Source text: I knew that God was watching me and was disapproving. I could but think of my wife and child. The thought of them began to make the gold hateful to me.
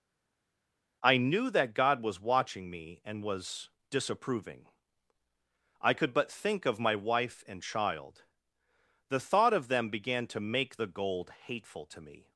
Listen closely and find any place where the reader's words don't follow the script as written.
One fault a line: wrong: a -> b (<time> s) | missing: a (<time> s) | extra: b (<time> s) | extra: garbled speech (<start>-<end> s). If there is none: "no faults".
no faults